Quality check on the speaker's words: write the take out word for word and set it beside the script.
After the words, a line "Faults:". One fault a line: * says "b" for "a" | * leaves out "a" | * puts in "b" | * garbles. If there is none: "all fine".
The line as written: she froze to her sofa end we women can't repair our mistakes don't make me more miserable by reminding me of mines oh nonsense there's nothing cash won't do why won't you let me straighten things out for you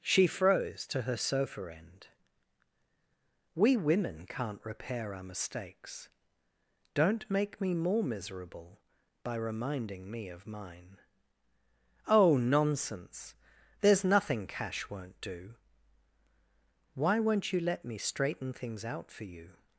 she froze to her sofa end we women can't repair our mistakes don't make me more miserable by reminding me of mine oh nonsense there's nothing cash won't do why won't you let me straighten things out for you
Faults:
* says "mine" for "mines"